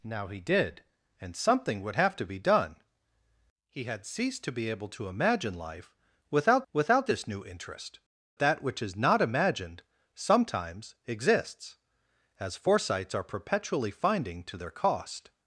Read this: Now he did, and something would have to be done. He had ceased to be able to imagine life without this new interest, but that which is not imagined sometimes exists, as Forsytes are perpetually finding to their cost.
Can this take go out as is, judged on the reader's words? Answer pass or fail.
fail